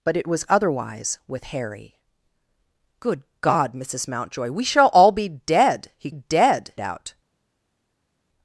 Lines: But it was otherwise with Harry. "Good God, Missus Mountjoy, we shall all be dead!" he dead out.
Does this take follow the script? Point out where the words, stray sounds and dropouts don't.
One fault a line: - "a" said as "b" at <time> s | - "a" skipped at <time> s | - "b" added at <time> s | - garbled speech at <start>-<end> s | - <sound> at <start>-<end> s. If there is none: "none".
none